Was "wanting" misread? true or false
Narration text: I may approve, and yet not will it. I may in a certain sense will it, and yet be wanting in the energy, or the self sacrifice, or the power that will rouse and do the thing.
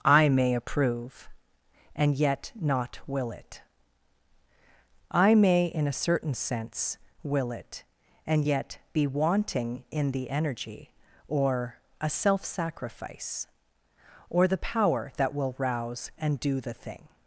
false